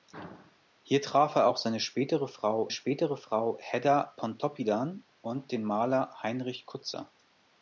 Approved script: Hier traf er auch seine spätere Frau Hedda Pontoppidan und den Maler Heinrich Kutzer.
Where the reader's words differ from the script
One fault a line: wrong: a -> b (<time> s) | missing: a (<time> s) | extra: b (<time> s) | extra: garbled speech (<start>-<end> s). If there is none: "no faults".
extra: spätere Frau (2.7 s)